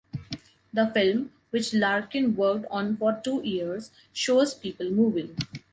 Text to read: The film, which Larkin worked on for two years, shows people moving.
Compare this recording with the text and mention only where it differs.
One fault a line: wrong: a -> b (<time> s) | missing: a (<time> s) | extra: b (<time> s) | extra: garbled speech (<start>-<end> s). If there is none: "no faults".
no faults